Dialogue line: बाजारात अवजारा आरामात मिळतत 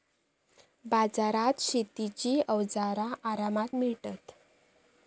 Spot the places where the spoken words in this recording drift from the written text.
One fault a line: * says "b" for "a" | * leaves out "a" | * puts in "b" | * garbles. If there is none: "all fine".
* puts in "शेतीची"